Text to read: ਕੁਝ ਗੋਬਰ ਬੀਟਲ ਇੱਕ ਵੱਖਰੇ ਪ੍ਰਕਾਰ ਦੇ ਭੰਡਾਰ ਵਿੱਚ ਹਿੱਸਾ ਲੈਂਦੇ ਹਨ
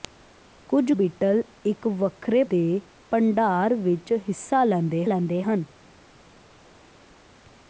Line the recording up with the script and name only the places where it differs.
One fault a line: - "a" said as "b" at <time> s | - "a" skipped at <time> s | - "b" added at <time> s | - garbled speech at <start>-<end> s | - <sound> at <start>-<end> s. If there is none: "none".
- "ਗੋਬਰ" skipped at 0.9 s
- "ਪ੍ਰਕਾਰ" skipped at 2.4 s
- "ਲੈਂਦੇ" added at 5.0 s